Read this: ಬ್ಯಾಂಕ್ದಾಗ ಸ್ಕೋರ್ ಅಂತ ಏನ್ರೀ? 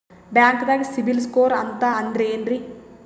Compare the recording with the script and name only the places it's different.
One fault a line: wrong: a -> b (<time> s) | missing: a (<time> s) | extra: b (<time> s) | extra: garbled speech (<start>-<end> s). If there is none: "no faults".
extra: ಸಿಬಿಲ್ (0.9 s)
extra: ಅಂದ್ರೆ (1.9 s)